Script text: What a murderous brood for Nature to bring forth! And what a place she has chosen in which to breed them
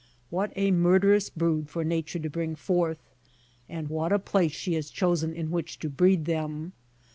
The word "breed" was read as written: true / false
true